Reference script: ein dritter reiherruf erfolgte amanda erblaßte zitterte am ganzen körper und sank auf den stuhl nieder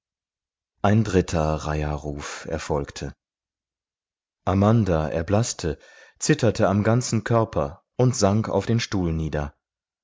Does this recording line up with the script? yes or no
yes